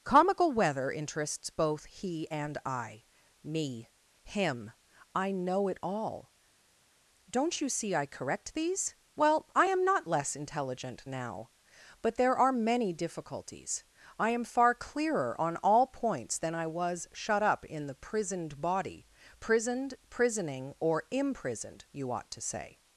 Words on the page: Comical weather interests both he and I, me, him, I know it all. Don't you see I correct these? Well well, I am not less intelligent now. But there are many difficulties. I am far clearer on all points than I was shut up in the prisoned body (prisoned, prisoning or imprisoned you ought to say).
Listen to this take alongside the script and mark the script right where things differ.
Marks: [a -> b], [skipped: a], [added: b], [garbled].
Comical weather interests both he and I, me, him, I know it all. Don't you see I correct these? Well [skipped: well,] I am not less intelligent now. But there are many difficulties. I am far clearer on all points than I was shut up in the prisoned body (prisoned, prisoning or imprisoned you ought to say).